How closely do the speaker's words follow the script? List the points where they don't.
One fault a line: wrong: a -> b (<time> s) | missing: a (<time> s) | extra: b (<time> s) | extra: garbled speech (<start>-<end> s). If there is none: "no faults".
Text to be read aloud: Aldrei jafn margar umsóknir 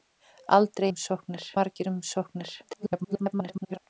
wrong: jafn -> umsóknir (0.9 s)
extra: garbled speech (2.6-3.8 s)